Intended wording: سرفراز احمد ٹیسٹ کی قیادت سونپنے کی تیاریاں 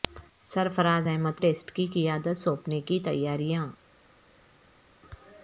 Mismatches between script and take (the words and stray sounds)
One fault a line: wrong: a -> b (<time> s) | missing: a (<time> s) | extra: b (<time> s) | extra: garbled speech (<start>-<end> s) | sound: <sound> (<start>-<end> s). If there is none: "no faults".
no faults